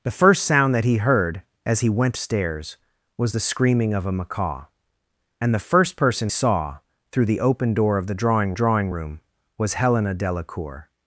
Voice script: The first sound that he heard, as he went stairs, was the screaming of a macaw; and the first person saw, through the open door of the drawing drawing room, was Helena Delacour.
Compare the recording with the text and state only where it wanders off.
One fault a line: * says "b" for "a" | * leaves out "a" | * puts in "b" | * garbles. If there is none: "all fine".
all fine